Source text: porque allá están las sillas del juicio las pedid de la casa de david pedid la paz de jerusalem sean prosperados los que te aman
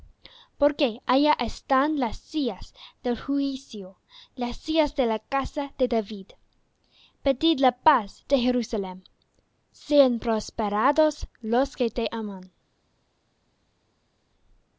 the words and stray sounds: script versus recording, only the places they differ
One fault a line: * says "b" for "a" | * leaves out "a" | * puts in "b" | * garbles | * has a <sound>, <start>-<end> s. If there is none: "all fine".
* says "sillas" for "pedid"